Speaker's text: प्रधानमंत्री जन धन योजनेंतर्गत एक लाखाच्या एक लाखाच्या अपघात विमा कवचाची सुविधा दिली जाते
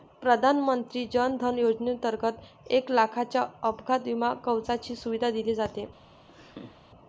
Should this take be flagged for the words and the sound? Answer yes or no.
yes